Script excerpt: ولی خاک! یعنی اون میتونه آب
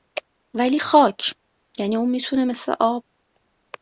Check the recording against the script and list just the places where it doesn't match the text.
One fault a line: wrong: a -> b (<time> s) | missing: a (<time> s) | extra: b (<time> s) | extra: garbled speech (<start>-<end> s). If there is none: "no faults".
extra: مثل (2.4 s)